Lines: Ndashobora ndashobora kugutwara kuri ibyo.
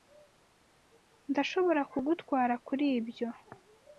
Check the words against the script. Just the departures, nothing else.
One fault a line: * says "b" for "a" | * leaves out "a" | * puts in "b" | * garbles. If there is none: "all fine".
* leaves out "ndashobora"